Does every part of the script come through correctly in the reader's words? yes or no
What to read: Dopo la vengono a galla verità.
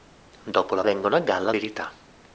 yes